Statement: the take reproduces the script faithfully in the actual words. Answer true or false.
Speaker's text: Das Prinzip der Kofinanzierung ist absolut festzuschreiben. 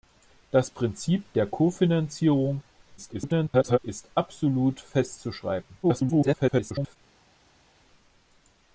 false